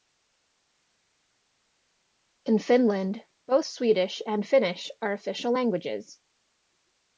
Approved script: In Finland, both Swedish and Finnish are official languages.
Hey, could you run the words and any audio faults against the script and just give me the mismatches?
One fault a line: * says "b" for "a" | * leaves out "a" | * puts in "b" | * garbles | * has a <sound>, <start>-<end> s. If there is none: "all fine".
all fine